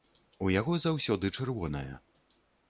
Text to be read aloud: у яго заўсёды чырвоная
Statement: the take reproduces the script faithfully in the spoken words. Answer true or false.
true